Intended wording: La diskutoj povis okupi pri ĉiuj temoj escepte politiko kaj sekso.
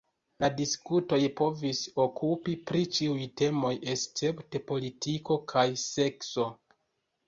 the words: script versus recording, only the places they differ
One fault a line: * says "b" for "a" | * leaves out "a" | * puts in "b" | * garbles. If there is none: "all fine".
all fine